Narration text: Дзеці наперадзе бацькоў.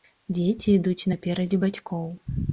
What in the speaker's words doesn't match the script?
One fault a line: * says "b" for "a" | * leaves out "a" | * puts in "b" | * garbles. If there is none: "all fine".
* puts in "ідуць"